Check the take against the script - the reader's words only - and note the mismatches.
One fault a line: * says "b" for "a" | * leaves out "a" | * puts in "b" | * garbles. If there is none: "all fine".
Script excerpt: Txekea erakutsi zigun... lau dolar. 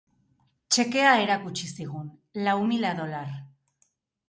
* puts in "mila"